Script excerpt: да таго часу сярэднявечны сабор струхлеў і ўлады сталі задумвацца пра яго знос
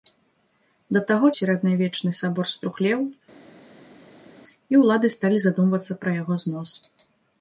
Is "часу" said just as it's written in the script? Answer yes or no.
no